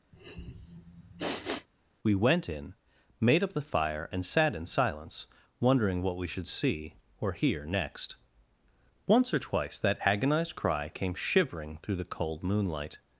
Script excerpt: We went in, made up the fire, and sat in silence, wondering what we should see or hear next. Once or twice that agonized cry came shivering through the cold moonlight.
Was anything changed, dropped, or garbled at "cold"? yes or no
no